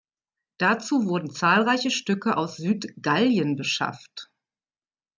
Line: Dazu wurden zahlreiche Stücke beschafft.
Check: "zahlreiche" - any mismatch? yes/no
no